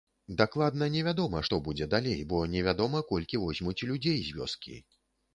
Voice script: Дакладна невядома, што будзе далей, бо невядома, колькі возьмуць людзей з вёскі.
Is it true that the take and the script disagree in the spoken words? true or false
false